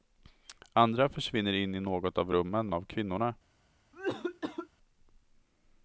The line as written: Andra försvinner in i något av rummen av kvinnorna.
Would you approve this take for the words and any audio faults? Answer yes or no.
no